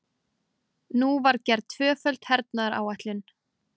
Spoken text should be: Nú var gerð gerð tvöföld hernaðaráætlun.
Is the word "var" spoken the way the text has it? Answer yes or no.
yes